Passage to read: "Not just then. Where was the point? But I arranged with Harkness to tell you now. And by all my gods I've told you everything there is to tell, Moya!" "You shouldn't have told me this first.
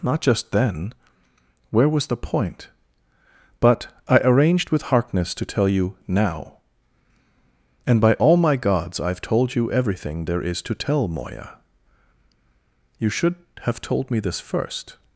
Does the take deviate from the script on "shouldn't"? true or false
true